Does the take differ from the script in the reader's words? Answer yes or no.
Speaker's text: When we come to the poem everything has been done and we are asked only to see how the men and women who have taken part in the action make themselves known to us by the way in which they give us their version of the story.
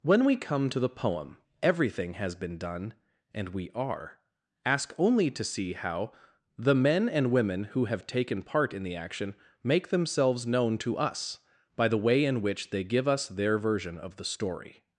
yes